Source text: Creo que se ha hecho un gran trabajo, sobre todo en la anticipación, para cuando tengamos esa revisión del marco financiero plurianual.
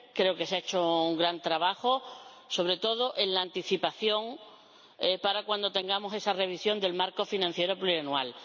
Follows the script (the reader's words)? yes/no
yes